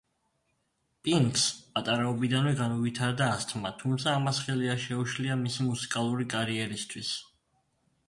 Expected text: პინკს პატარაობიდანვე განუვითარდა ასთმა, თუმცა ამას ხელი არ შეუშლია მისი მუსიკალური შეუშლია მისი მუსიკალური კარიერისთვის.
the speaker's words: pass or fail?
fail